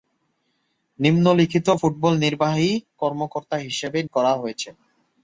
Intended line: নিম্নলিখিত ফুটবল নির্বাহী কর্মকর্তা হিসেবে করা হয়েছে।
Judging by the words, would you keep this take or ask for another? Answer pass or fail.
pass